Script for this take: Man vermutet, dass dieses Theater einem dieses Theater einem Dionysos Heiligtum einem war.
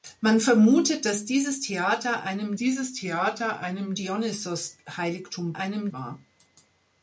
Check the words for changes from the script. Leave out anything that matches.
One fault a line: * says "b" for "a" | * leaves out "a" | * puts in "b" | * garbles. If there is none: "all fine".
all fine